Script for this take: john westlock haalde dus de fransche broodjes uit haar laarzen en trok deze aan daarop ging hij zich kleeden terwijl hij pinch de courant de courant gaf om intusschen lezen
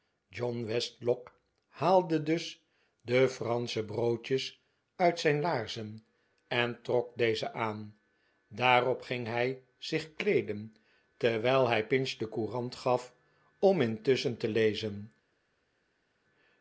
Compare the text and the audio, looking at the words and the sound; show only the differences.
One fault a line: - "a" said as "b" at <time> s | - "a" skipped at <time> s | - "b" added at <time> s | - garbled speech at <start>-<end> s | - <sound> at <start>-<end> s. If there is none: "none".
- "haar" said as "zijn" at 5.2 s
- "de courant" skipped at 12.8 s
- "te" added at 14.4 s